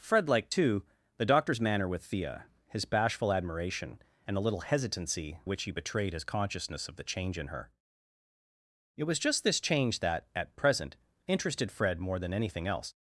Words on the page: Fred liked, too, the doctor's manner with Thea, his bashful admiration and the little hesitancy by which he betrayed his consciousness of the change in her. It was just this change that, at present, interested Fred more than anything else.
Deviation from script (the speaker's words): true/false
true